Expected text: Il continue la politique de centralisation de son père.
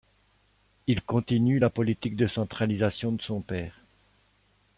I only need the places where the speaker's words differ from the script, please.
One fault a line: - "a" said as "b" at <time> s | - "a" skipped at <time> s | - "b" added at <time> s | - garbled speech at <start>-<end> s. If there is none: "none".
none